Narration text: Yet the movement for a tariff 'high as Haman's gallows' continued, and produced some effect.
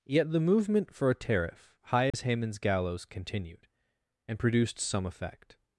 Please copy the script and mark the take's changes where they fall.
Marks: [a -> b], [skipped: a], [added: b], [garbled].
Yet the movement for a tariff 'high as Haman's gallows' continued, and produced some effect.